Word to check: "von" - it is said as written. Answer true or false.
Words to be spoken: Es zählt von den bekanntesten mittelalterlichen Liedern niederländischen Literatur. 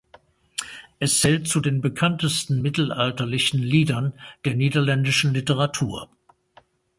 false